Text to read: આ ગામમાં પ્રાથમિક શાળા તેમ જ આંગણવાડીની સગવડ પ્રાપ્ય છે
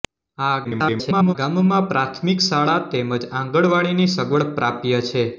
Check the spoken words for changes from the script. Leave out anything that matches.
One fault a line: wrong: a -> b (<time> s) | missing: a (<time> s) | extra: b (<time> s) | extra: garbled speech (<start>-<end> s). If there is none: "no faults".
extra: garbled speech (0.6-1.4 s)